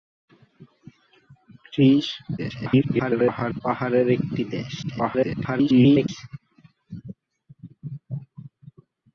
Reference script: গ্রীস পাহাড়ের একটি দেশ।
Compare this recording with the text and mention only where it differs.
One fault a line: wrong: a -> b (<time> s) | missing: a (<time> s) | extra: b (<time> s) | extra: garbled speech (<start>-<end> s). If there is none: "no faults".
extra: garbled speech (2.4-3.6 s)
extra: garbled speech (4.8-6.1 s)